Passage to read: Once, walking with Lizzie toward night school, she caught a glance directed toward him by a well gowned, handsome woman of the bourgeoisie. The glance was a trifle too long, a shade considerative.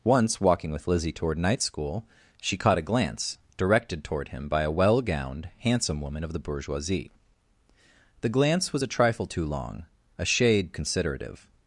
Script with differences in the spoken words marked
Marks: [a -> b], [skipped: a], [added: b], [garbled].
Once, walking with Lizzie toward night school, she caught a glance directed toward him by a well gowned, handsome woman of the bourgeoisie. The glance was a trifle too long, a shade considerative.